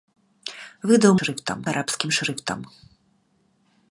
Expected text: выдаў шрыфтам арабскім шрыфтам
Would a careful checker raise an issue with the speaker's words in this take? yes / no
no